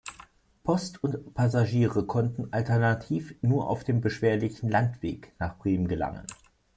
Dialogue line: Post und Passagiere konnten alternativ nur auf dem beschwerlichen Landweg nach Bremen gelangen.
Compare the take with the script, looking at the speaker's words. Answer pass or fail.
pass